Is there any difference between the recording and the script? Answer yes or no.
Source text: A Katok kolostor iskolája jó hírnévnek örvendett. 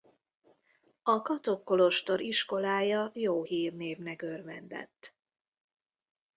no